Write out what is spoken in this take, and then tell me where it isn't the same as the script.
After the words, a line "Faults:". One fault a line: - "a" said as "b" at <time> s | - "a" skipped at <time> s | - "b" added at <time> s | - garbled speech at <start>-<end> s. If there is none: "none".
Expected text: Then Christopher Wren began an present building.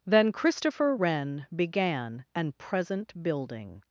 Then Christopher Wren began an present building.
Faults:
none